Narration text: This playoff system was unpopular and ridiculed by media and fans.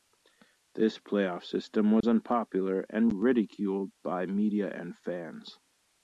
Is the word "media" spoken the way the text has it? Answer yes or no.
yes